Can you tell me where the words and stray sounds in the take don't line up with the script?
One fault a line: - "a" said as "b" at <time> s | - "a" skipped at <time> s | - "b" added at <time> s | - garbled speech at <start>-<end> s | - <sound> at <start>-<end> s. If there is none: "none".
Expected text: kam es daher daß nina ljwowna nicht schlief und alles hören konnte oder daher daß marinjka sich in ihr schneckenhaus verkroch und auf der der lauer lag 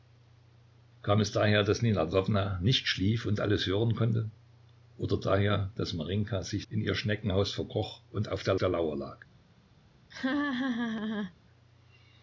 - laugh at 10.1-11.3 s